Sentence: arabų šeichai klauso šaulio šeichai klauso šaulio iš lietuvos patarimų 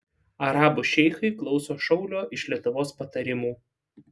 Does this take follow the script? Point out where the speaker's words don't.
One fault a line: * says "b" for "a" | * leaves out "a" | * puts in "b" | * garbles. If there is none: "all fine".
* leaves out "šeichai klauso šaulio"